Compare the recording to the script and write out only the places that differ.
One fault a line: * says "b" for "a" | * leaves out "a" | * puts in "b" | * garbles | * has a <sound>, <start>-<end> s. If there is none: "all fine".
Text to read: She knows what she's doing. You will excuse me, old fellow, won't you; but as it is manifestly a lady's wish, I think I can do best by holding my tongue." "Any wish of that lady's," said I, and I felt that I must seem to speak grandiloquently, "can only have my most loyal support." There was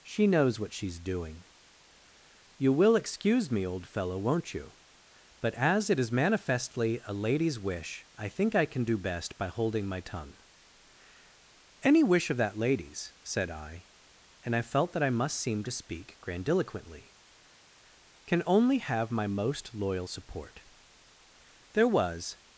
all fine